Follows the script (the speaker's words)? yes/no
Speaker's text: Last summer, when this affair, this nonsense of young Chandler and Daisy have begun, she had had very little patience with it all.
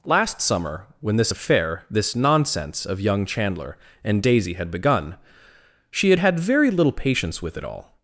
no